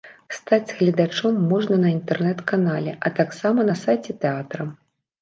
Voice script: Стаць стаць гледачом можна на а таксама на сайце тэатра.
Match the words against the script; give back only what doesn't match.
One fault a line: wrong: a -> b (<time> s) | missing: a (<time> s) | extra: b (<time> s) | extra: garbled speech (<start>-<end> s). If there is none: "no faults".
missing: стаць (0.8 s)
extra: інтэрнэт канале (2.0 s)